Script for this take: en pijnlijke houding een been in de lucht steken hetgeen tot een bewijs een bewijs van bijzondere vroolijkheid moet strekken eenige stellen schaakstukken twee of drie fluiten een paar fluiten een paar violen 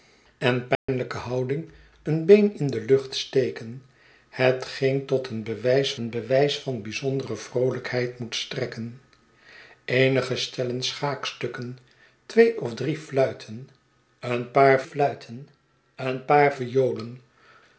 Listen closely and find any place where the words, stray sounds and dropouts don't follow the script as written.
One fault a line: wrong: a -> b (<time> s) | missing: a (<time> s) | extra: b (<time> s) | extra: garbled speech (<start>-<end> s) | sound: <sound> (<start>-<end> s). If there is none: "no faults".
sound: dropout (0.8-0.9 s)